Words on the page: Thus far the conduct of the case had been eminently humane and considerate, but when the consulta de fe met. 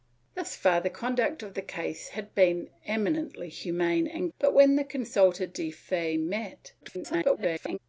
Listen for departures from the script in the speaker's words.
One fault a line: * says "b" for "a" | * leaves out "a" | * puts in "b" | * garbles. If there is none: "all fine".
* leaves out "considerate"
* garbles